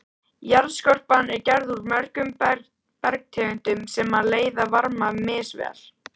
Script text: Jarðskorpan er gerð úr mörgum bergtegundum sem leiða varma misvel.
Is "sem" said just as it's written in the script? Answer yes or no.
yes